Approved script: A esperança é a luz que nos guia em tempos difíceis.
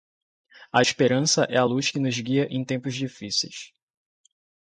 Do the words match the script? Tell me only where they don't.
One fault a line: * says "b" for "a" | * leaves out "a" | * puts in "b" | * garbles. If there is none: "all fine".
all fine